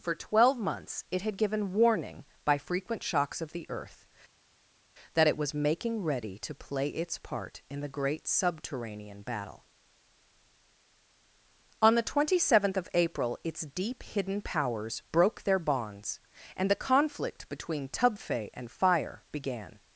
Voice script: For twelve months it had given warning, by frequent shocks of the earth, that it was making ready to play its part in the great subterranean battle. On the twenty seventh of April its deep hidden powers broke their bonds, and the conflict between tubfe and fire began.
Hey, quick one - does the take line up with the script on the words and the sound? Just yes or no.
yes